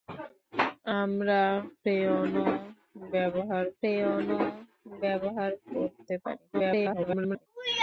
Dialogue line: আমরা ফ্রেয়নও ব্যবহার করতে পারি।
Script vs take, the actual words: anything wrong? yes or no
yes